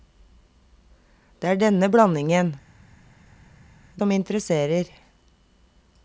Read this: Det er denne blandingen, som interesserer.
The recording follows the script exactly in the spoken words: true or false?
true